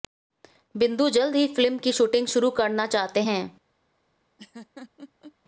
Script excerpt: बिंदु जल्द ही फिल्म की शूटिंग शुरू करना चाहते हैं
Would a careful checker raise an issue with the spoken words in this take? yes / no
no